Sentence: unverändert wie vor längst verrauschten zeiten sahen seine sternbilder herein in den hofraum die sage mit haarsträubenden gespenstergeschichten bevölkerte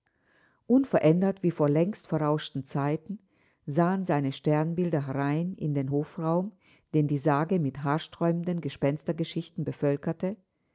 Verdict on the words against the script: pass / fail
fail